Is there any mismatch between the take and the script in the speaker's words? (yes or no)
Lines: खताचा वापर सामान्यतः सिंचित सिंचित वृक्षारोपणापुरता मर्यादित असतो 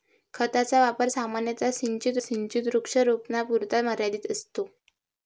no